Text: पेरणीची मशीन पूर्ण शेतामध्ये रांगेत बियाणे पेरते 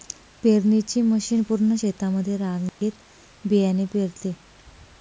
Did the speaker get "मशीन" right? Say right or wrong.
right